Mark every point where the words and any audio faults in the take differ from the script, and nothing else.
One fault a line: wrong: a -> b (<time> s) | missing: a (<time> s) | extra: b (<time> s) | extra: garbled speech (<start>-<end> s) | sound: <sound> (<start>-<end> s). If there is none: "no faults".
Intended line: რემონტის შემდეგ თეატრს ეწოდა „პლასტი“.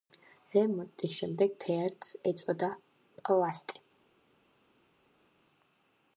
no faults